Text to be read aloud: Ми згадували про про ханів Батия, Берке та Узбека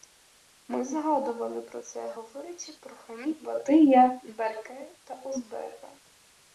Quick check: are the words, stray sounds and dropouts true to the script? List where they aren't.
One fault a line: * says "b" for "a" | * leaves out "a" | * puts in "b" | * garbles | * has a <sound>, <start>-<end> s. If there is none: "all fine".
* puts in "це говорячи"